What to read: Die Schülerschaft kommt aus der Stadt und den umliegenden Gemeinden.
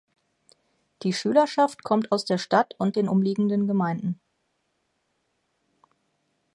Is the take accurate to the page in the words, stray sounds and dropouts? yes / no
yes